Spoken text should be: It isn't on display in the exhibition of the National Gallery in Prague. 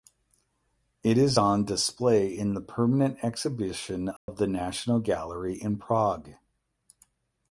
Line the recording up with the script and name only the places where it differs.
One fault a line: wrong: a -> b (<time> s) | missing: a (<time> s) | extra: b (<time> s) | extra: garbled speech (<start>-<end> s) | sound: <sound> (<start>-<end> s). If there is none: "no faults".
wrong: isn't -> is (1.2 s)
extra: permanent (2.6 s)
sound: dropout (4.2-4.3 s)